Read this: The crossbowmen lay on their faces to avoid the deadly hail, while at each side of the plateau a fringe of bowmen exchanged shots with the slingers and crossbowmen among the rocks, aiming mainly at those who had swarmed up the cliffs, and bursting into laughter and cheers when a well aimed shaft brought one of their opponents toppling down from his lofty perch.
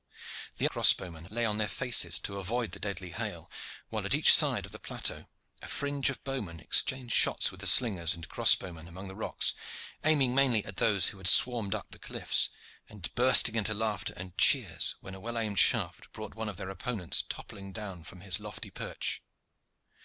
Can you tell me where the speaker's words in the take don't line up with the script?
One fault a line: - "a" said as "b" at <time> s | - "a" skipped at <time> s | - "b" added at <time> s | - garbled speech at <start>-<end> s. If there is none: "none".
none